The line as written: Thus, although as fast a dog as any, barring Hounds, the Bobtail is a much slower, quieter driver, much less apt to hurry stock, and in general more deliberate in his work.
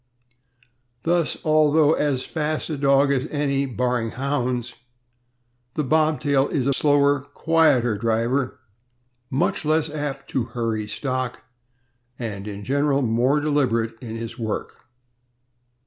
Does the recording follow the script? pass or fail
fail